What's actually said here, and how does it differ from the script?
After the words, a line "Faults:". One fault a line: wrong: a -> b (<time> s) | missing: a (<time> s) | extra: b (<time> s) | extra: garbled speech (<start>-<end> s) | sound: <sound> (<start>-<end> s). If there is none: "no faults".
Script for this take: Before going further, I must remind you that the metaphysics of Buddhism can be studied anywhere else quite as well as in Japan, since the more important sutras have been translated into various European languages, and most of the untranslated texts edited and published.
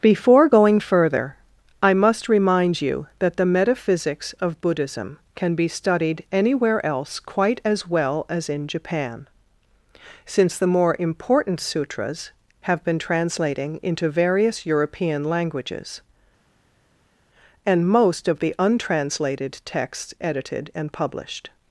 Before going further, I must remind you that the metaphysics of Buddhism can be studied anywhere else quite as well as in Japan, since the more important sutras have been translating into various European languages, and most of the untranslated texts edited and published.
Faults:
wrong: translated -> translating (13.0 s)